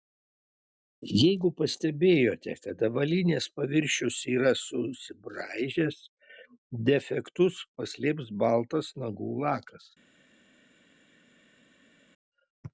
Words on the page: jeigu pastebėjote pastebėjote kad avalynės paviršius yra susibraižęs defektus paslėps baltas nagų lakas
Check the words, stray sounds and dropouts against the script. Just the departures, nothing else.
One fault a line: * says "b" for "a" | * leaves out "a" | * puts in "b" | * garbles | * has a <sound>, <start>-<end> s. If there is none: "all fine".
* leaves out "pastebėjote"